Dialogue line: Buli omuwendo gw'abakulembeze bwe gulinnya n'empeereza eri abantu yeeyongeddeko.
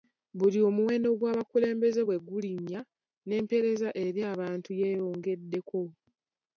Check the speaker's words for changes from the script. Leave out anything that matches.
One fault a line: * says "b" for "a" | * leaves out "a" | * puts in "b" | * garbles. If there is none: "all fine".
all fine